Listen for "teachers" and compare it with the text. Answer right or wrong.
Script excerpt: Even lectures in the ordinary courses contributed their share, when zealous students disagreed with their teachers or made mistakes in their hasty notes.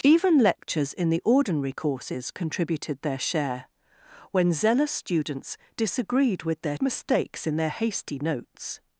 wrong